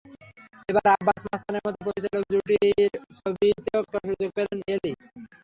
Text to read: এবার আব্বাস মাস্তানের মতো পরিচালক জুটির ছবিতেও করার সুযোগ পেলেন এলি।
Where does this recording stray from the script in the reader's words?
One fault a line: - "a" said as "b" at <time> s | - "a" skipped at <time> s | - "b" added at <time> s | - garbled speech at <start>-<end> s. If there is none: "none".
none